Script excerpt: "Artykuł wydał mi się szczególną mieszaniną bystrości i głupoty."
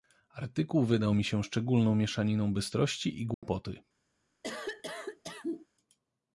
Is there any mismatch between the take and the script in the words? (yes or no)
no